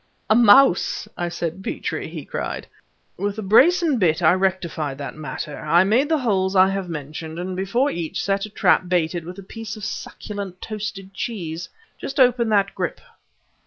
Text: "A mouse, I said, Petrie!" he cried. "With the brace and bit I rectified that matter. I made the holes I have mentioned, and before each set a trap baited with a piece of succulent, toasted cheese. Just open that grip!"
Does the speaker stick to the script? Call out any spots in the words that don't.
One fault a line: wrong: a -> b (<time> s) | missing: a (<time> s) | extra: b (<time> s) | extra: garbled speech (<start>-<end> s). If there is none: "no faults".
no faults